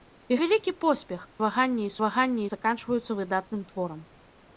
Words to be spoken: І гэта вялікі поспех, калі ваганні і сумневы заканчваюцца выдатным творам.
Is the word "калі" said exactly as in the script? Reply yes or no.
no